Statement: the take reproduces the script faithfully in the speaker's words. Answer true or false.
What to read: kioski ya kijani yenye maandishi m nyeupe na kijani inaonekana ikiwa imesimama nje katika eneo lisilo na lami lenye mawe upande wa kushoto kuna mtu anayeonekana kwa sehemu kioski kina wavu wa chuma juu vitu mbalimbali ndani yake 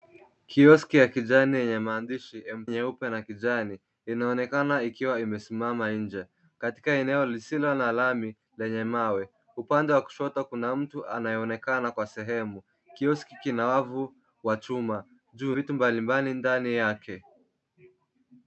true